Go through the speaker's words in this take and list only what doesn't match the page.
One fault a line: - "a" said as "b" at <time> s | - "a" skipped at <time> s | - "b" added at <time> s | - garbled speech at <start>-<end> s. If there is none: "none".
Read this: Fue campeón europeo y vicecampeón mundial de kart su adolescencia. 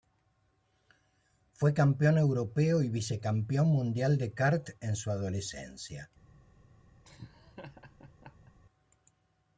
- "en" added at 4.8 s